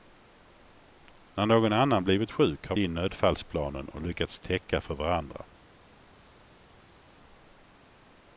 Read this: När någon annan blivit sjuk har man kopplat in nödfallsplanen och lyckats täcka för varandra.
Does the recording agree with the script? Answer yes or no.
no